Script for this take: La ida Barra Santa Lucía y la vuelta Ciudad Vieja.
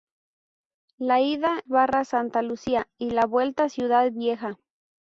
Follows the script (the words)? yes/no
yes